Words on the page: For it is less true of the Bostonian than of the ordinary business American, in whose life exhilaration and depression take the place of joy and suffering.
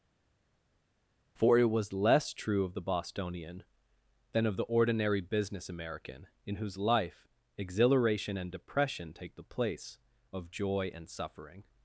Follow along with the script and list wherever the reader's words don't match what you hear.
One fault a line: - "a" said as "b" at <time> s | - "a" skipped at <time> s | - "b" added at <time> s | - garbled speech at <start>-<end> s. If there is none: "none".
- "is" said as "was" at 1.7 s